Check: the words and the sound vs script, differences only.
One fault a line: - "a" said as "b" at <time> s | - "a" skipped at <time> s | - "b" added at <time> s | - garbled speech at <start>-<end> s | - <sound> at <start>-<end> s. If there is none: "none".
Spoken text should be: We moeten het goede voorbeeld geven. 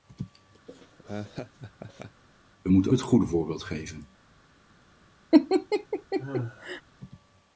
- laugh at 0.7-2.2 s
- laugh at 5.3-6.8 s